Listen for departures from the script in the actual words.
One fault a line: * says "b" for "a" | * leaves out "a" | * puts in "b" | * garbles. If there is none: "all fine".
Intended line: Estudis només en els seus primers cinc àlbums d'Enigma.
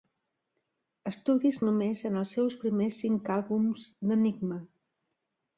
all fine